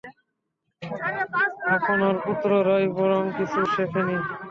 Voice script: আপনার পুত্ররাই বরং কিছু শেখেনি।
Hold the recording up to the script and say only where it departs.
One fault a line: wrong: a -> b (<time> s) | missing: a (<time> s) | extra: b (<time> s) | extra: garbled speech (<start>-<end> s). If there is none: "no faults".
no faults